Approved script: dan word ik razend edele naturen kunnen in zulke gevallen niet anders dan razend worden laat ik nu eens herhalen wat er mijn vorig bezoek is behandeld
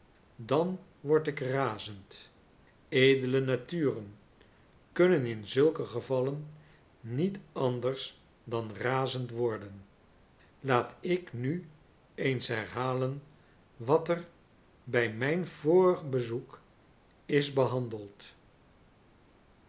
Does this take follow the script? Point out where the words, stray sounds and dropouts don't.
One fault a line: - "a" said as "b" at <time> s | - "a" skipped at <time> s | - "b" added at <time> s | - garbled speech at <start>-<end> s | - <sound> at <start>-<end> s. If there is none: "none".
- "bij" added at 14.8 s